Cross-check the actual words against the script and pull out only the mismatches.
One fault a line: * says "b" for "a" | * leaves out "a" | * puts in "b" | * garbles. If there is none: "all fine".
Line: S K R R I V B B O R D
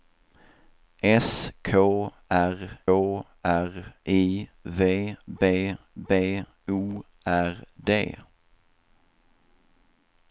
all fine